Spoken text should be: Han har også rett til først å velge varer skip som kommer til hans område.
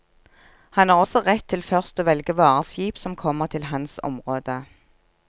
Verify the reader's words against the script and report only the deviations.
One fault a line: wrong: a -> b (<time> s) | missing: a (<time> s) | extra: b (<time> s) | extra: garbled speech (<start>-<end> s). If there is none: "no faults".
no faults